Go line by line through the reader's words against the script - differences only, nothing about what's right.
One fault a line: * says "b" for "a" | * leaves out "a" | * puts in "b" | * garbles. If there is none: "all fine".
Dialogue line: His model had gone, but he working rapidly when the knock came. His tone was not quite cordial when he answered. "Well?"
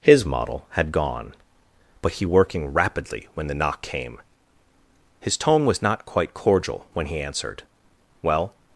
all fine